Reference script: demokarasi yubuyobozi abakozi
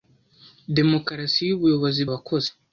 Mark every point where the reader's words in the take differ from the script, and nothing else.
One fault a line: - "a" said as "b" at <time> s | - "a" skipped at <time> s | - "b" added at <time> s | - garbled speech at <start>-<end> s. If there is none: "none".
none